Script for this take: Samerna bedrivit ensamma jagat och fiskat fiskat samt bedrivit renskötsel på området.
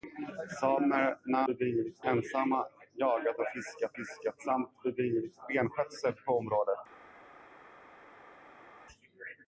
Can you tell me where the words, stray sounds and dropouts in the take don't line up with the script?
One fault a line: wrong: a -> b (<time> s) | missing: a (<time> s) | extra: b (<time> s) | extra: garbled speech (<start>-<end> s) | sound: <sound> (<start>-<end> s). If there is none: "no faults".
no faults